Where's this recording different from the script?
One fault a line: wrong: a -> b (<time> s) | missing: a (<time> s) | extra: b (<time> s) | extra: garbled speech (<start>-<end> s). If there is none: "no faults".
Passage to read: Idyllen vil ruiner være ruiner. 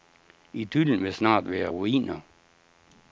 wrong: ruiner -> snart (1.1 s)